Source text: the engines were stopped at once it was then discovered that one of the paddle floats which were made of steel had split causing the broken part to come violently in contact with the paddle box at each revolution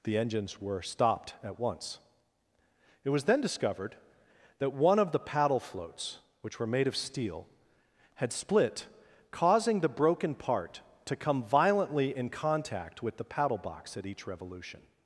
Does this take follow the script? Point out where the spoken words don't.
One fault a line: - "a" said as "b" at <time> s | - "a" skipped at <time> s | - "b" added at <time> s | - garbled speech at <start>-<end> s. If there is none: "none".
none